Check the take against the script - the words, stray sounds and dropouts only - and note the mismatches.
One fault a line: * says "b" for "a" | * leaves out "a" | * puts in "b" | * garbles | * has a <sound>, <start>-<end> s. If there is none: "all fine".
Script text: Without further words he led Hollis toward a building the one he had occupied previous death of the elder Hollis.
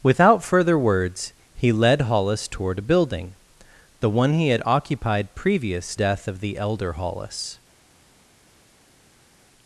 all fine